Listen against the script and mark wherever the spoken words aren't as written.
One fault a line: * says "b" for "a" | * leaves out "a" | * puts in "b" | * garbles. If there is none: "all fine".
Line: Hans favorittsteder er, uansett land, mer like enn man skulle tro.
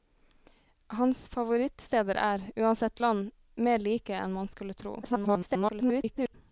* garbles